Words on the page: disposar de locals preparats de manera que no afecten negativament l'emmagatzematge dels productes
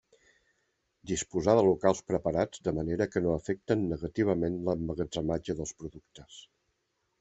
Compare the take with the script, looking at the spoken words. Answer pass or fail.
pass